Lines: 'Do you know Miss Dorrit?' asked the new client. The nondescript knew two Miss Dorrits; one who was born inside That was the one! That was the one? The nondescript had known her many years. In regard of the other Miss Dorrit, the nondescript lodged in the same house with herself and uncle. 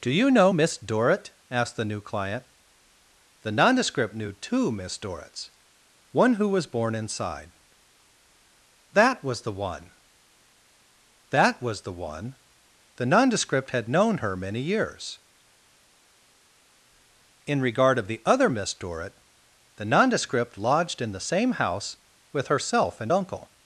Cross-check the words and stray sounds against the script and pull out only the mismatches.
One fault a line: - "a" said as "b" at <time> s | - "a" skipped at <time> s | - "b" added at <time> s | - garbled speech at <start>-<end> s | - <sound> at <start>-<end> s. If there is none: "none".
none